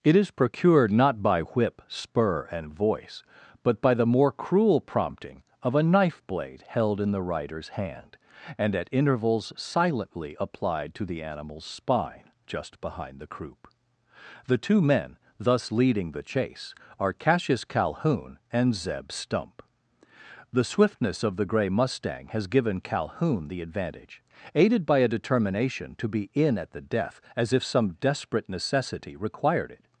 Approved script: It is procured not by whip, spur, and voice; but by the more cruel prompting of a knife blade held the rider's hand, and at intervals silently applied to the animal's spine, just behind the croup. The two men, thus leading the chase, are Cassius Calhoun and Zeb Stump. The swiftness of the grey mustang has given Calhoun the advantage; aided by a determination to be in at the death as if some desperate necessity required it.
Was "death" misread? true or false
false